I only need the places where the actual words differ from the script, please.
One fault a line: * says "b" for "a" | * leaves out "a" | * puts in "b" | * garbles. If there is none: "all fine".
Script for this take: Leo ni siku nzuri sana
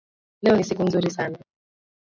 all fine